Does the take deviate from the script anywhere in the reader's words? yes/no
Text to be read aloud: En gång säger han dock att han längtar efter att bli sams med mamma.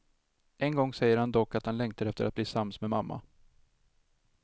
no